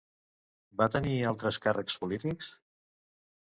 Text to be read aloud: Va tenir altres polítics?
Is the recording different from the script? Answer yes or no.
yes